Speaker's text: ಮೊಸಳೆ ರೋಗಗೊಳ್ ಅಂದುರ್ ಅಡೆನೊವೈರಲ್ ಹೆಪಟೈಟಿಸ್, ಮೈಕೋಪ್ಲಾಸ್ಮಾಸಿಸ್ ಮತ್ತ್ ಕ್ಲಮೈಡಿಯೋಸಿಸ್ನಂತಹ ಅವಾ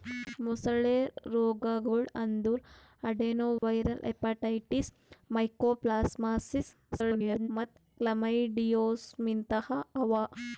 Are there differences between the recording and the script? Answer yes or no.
yes